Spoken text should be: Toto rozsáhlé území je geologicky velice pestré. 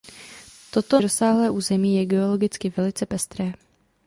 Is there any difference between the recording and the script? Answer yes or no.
no